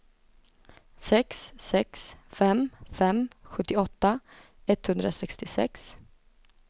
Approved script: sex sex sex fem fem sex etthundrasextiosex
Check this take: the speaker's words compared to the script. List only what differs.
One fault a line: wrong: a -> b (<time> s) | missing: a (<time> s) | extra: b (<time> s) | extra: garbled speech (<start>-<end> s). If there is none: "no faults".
missing: sex (2.1 s)
wrong: sex -> sjuttioåtta (3.5 s)